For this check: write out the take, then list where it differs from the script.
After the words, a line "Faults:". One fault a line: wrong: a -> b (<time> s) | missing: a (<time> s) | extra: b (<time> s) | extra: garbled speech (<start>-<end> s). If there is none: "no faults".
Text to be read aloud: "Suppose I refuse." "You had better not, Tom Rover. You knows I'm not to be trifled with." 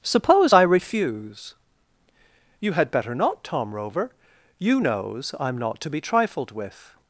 "Suppose I refuse." "You had better not, Tom Rover. You knows I'm not to be trifled with."
Faults:
no faults